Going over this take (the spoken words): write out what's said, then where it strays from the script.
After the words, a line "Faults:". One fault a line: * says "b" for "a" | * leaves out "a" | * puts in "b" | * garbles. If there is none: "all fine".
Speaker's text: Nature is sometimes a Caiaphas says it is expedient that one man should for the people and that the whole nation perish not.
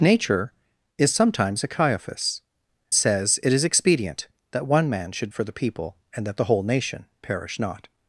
Nature is sometimes a Caiaphas says it is expedient that one man should for the people and that the whole nation perish not.
Faults:
all fine